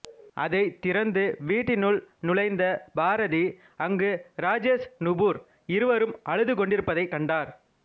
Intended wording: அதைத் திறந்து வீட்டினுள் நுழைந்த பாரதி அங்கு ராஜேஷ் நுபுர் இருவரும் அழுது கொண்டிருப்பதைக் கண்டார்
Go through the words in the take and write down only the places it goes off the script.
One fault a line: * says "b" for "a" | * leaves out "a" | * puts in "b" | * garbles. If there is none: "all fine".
all fine